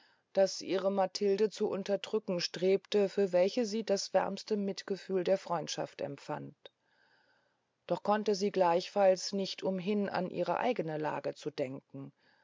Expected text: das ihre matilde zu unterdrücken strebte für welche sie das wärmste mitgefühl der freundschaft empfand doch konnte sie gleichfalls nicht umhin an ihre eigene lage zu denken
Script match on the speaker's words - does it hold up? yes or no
yes